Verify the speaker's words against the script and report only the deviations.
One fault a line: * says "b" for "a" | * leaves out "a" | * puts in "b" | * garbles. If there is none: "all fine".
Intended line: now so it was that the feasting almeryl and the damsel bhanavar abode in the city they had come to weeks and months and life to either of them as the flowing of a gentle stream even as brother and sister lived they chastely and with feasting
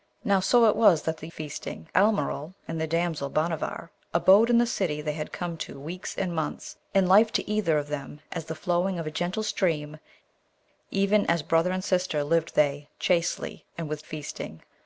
all fine